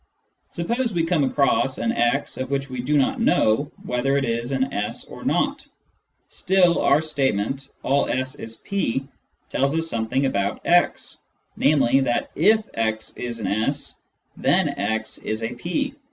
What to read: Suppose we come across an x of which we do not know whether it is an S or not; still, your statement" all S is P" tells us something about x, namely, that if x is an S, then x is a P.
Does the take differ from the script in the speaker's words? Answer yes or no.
yes